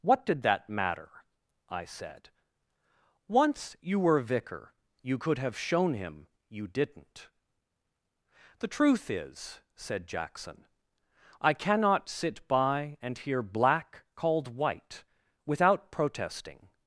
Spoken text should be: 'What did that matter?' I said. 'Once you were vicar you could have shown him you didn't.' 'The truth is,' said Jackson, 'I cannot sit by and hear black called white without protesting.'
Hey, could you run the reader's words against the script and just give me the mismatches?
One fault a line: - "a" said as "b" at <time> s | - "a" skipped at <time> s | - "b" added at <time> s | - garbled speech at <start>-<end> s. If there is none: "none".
none